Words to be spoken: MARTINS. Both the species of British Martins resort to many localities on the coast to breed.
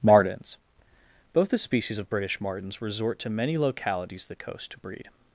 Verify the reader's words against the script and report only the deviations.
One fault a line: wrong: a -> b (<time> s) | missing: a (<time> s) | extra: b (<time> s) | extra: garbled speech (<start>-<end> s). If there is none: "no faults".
missing: on (4.3 s)